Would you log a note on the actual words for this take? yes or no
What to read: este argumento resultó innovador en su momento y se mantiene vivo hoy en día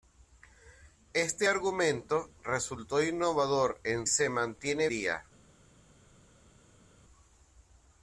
yes